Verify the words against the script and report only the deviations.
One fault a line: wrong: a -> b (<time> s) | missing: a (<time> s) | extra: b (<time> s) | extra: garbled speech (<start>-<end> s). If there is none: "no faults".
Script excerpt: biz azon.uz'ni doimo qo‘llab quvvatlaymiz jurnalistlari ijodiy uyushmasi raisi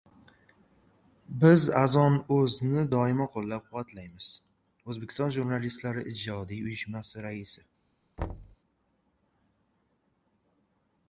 extra: o‘zbekiston (4.9 s)